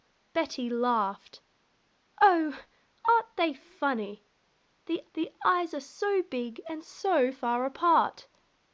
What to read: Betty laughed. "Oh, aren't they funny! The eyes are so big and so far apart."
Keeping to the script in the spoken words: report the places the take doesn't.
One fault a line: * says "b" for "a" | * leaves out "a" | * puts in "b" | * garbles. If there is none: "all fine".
* puts in "the"